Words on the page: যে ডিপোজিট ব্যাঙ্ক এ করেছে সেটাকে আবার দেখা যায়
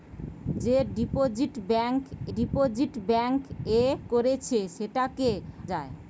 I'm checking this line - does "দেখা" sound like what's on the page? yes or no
no